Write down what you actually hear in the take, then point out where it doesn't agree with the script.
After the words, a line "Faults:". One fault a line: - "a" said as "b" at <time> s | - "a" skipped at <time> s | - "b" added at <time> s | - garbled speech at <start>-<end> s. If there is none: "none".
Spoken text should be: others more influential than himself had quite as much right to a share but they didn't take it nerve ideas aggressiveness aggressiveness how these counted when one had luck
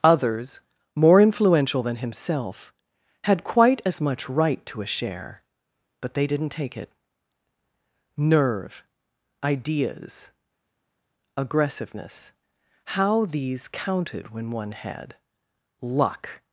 others more influential than himself had quite as much right to a share but they didn't take it nerve ideas aggressiveness how these counted when one had luck
Faults:
- "aggressiveness" skipped at 12.3 s